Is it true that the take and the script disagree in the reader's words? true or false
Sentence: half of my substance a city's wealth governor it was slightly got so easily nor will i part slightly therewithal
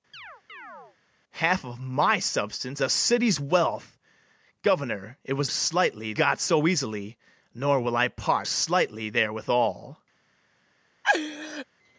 false